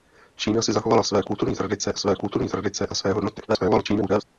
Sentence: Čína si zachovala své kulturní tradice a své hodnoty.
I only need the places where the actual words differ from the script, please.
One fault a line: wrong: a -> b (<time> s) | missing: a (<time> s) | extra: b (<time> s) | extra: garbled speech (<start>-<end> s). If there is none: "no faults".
extra: své kulturní tradice (2.0 s)
extra: garbled speech (3.5-4.2 s)